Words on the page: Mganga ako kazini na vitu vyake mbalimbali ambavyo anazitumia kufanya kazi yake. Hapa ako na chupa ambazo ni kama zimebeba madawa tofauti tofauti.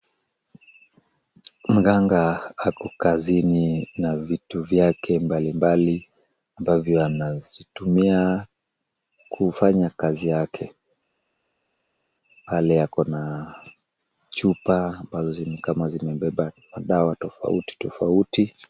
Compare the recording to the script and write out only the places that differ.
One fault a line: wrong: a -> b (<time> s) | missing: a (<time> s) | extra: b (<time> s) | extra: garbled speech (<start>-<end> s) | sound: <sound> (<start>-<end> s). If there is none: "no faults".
wrong: Hapa -> Pale (12.5 s)